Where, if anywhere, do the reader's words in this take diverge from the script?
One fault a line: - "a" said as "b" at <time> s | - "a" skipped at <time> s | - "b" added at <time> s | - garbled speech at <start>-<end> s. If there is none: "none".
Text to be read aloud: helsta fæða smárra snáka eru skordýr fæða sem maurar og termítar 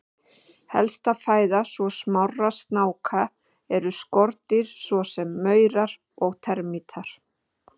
- "svo" added at 1.7 s
- "fæða" said as "svo" at 4.9 s